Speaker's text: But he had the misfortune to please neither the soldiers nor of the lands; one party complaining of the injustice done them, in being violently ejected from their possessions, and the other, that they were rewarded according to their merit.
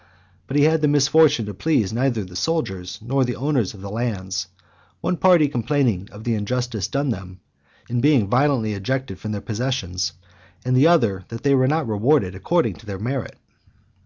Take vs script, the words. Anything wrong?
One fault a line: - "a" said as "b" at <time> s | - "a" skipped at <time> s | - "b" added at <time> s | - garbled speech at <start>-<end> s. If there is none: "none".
- "the owners" added at 3.3 s
- "not" added at 11.7 s